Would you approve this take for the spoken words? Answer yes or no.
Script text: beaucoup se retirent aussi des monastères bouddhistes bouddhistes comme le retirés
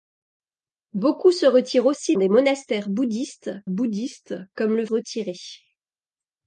yes